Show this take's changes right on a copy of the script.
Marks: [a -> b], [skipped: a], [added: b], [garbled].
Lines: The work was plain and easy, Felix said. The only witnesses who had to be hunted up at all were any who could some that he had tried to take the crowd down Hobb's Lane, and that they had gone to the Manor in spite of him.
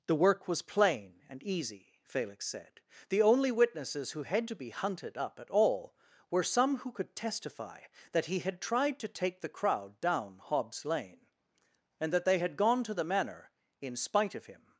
The work was plain and easy, Felix said. The only witnesses who had to be hunted up at all were [any -> some] who could [some -> testify] that he had tried to take the crowd down Hobb's Lane, and that they had gone to the Manor in spite of him.